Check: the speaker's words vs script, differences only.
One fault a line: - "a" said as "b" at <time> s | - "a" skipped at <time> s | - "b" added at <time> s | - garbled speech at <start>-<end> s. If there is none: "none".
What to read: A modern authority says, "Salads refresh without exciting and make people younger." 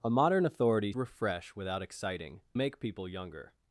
- "says Salads" skipped at 0.9 s
- "and" skipped at 2.4 s